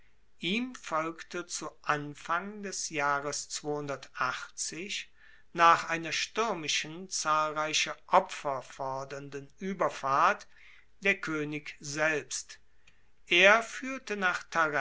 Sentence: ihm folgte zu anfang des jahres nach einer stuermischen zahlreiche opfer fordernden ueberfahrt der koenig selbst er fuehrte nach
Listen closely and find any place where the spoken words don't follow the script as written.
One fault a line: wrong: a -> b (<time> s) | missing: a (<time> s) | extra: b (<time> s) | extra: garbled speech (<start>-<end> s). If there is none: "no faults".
no faults